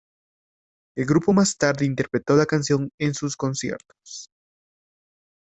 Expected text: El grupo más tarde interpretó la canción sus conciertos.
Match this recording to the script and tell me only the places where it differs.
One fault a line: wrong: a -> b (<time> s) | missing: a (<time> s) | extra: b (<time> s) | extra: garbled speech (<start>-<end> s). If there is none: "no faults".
extra: en (3.0 s)